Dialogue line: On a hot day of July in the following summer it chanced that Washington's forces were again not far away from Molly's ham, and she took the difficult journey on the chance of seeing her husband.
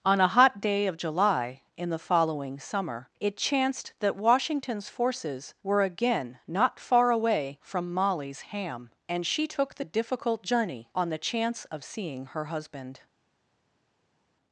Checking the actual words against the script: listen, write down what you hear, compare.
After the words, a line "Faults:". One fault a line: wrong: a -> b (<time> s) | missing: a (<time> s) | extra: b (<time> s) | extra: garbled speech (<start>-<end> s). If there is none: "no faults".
On a hot day of July in the following summer it chanced that Washington's forces were again not far away from Molly's ham, and she took the difficult journey on the chance of seeing her husband.
Faults:
no faults